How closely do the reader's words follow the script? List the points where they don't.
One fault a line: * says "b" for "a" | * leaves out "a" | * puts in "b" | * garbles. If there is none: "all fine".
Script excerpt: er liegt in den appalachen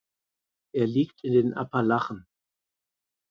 all fine